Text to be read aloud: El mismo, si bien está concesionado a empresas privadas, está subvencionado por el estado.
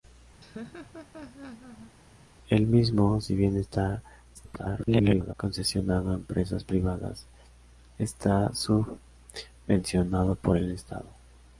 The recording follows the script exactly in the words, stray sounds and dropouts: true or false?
false